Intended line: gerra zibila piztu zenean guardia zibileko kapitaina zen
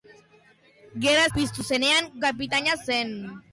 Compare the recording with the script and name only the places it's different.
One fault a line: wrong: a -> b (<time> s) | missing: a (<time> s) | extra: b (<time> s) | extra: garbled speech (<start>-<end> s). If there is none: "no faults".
missing: zibila (1.3 s)
missing: guardia zibileko (2.1 s)